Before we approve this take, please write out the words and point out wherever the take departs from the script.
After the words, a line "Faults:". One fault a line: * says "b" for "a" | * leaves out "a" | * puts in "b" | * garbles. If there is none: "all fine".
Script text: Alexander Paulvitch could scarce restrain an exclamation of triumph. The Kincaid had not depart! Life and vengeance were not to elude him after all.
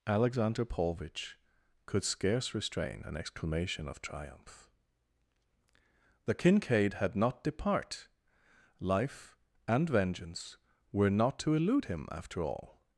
Alexander Paulvitch could scarce restrain an exclamation of triumph. The Kincaid had not depart! Life and vengeance were not to elude him after all.
Faults:
all fine